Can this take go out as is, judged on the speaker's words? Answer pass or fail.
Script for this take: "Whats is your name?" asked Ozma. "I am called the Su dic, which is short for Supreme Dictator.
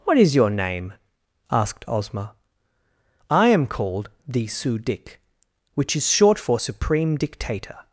fail